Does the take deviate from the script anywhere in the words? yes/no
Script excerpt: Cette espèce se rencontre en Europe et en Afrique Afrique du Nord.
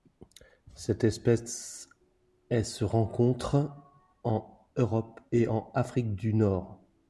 yes